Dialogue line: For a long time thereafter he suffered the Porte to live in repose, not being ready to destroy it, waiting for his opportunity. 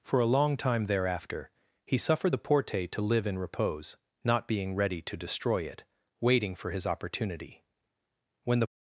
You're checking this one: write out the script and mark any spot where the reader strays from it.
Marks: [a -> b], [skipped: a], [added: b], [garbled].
For a long time thereafter he suffered the Porte to live in repose, not being ready to destroy it, waiting for his opportunity. [added: When the]